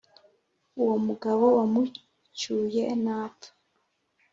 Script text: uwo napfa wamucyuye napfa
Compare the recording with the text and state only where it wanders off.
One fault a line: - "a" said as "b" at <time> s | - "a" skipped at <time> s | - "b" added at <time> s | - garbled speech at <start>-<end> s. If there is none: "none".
- "napfa" said as "mugabo" at 1.1 s